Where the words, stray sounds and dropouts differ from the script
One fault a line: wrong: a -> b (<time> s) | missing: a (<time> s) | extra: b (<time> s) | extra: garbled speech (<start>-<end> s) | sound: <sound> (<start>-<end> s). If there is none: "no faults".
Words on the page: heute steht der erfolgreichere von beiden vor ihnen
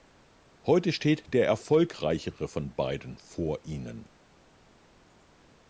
no faults